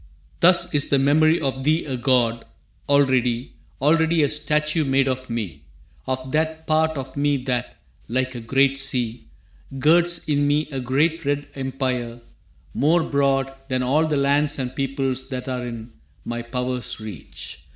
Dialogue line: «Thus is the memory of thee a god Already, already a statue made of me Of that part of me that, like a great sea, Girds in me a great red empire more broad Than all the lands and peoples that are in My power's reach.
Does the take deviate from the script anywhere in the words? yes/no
no